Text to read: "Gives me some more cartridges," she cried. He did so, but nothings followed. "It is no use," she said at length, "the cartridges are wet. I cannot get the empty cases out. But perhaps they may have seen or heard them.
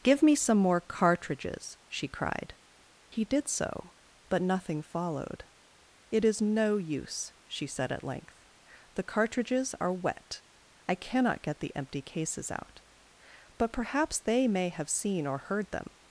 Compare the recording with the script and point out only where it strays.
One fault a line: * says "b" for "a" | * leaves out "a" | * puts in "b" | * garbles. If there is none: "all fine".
* says "Give" for "Gives"
* says "nothing" for "nothings"